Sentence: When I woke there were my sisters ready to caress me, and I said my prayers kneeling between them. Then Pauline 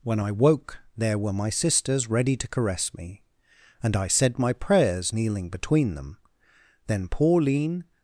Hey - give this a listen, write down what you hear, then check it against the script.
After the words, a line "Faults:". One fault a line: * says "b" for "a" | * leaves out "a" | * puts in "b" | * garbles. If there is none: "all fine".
When I woke there were my sisters ready to caress me, and I said my prayers kneeling between them. Then Pauline
Faults:
all fine